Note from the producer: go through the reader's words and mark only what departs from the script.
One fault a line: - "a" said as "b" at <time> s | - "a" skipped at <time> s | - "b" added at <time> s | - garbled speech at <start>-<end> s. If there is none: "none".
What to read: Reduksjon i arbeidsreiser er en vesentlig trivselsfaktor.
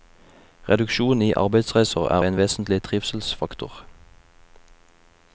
none